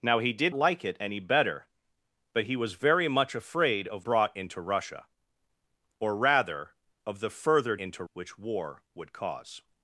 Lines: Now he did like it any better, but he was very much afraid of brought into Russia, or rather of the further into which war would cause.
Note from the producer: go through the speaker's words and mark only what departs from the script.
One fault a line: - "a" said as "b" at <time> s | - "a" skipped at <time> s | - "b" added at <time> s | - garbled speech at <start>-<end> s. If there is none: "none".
none